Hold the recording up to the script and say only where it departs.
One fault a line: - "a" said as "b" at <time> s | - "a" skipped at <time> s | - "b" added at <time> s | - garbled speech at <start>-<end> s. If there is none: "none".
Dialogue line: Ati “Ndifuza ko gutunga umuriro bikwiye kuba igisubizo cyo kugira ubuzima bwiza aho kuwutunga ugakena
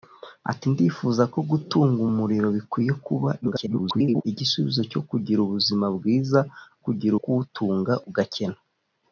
- garbled speech at 3.4-4.2 s
- "aho" said as "kugira" at 6.8 s